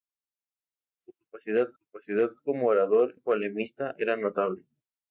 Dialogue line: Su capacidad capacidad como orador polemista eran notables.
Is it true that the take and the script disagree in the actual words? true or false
false